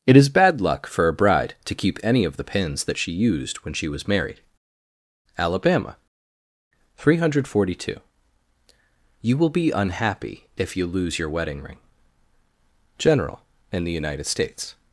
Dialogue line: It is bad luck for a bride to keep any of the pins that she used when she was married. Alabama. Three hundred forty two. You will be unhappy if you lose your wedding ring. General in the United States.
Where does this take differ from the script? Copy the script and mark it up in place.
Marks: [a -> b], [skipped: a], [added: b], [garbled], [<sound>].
It is bad luck for a bride to keep any of the pins that she used when she was married. Alabama. Three hundred forty two. You will be unhappy if you lose your wedding ring. General in the United States.